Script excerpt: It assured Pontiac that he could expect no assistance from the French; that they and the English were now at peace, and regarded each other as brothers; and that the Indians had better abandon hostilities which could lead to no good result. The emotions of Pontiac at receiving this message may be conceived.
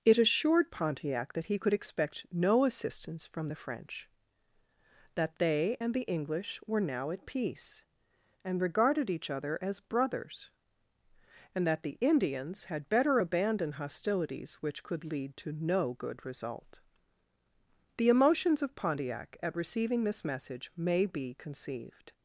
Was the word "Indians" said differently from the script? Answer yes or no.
no